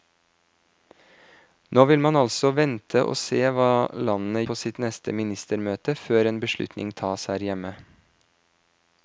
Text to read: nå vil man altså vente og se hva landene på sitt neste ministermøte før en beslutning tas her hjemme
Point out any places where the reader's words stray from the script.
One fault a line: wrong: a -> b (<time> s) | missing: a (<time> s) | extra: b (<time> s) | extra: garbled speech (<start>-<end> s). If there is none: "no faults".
no faults